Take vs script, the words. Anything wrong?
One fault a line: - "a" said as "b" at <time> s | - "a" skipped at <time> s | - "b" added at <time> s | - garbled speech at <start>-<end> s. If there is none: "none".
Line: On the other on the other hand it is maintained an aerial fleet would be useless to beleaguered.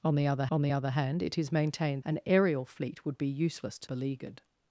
none